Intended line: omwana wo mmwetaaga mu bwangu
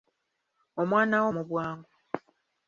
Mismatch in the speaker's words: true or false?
true